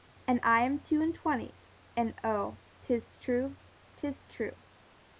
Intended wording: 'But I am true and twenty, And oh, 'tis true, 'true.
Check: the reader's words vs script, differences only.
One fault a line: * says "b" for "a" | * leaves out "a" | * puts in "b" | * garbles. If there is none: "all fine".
* says "And" for "But"
* says "two" for "true"
* puts in "tis"